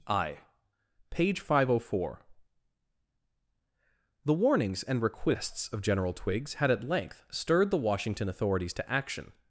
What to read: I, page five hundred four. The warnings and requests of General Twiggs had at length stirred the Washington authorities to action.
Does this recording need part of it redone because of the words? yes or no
no